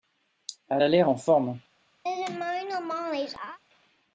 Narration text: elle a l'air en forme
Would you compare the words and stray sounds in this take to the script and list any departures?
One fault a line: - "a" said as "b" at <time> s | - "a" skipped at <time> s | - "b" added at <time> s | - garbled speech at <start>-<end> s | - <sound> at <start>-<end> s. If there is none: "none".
- laugh at 2.0-3.6 s